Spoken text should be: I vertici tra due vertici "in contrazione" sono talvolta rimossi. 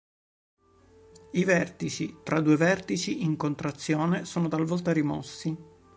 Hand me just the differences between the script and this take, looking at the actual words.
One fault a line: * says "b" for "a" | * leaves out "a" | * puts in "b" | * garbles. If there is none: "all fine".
all fine